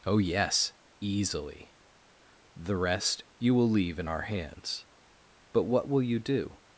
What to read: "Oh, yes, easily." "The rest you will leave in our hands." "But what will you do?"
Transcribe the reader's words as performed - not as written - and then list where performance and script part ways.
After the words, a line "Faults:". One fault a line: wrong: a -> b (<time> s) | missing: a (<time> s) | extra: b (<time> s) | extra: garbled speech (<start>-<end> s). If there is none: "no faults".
"Oh, yes, easily." "The rest you will leave in our hands." "But what will you do?"
Faults:
no faults